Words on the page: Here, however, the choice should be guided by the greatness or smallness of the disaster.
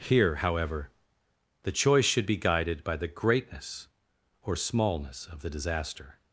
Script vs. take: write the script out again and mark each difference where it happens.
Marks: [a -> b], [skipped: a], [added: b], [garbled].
Here, however, the choice should be guided by the greatness or smallness of the disaster.